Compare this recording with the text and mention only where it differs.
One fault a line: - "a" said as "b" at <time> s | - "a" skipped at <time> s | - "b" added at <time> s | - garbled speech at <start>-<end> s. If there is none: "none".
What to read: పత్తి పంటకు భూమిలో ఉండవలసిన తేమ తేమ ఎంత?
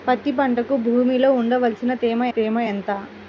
none